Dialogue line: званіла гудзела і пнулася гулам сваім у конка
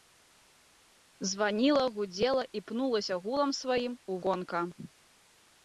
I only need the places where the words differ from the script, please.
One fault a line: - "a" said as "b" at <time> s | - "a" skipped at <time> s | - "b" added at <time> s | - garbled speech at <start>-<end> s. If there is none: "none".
none